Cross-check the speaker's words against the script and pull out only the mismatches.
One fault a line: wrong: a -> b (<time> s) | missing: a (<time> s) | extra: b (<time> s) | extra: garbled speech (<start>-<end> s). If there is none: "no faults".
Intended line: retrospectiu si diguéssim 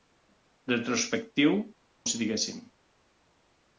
no faults